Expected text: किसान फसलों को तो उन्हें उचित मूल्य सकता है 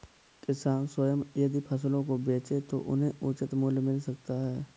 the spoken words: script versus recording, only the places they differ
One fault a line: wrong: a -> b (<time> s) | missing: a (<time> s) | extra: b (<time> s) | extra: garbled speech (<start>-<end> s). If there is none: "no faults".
extra: स्वयं यदि (0.8 s)
extra: बेचे (2.2 s)
extra: मिल (3.8 s)